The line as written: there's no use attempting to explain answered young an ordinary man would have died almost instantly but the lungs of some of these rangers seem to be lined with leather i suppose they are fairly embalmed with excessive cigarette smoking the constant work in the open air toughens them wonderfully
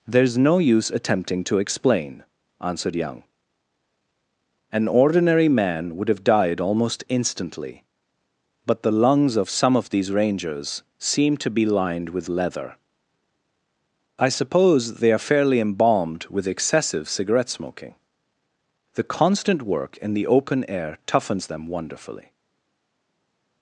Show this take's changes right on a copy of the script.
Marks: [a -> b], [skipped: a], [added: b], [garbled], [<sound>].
there's no use attempting to explain answered young an ordinary man would have died almost instantly but the lungs of some of these rangers seem to be lined with leather i suppose they are fairly embalmed with excessive cigarette smoking the constant work in the open air toughens them wonderfully